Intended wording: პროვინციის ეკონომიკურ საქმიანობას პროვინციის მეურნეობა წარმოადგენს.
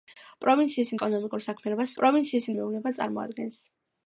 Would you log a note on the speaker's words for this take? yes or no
no